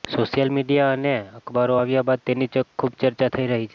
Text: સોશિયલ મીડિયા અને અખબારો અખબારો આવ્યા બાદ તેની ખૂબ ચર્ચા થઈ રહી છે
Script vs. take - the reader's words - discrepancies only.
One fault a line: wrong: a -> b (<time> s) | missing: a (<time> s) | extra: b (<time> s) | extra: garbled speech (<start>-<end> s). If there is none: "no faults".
missing: અખબારો (1.8 s)